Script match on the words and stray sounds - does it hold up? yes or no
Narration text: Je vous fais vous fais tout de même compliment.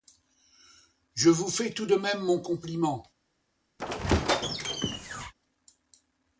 no